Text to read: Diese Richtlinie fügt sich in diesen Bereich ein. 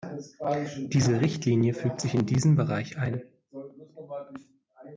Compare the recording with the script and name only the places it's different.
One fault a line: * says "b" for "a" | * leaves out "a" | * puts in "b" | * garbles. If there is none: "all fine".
all fine